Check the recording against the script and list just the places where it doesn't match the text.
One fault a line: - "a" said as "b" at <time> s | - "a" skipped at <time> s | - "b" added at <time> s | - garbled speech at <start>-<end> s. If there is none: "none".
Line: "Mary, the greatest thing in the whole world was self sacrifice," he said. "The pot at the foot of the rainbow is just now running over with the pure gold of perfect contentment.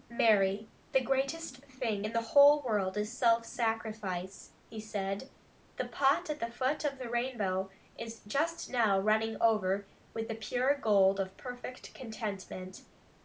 - "was" said as "is" at 3.0 s